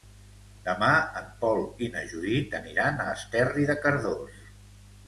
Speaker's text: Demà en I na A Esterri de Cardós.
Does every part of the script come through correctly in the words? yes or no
no